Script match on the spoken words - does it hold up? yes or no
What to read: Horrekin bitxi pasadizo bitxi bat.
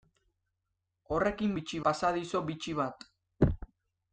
yes